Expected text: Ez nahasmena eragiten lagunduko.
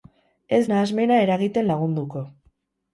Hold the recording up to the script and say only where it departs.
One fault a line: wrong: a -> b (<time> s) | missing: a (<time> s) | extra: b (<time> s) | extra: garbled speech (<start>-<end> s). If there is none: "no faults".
no faults